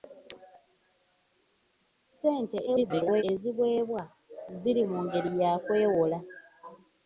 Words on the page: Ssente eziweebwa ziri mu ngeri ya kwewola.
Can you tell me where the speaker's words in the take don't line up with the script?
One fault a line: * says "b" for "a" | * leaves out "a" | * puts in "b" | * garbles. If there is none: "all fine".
* garbles